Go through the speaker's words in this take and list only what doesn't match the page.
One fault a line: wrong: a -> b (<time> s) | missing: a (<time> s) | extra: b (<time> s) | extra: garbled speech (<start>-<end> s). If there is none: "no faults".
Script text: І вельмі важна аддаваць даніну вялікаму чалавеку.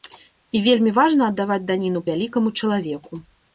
no faults